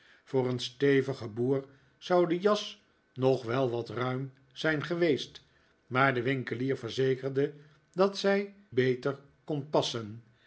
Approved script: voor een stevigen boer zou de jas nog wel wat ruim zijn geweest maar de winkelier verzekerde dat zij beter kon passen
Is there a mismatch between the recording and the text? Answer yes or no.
no